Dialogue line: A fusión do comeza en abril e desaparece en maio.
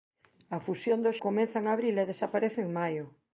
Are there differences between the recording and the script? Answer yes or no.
no